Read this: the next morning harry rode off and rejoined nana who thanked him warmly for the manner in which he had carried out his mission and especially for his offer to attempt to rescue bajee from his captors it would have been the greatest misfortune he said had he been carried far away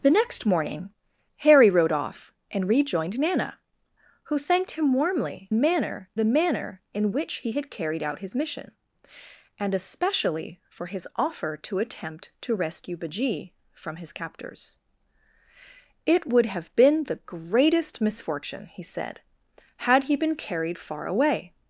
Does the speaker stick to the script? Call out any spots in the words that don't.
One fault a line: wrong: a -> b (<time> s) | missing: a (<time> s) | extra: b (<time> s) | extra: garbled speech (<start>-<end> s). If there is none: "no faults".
wrong: for -> manner (5.5 s)